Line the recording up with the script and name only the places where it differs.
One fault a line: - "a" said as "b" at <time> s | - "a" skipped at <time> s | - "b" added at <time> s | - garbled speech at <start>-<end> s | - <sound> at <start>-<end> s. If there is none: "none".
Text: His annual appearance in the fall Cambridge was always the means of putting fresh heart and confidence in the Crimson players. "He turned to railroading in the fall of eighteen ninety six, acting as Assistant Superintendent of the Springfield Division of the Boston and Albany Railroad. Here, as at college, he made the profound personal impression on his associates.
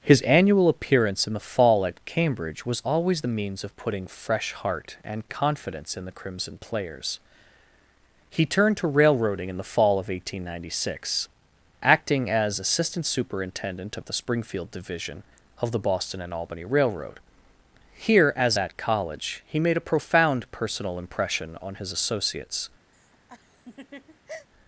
- "at" added at 1.9 s
- "the" said as "a" at 19.8 s
- laugh at 22.9-24.5 s